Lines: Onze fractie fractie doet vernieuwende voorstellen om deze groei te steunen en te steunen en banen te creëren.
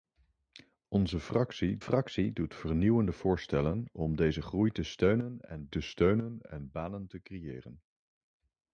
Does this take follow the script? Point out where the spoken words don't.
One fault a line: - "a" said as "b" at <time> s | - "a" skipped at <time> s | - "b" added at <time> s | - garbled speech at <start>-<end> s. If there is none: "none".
none